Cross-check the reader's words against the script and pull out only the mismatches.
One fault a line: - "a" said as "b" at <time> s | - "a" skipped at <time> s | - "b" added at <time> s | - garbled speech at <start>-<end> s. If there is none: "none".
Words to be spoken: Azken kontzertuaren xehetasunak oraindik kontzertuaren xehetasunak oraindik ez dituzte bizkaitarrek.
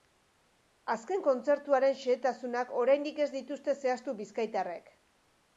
- "kontzertuaren xehetasunak oraindik" skipped at 3.2 s
- "zehaztu" added at 3.9 s